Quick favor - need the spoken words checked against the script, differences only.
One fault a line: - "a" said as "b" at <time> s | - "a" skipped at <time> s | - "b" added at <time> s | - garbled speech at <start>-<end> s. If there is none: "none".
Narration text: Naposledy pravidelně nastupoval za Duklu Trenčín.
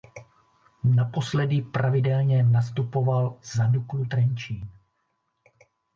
none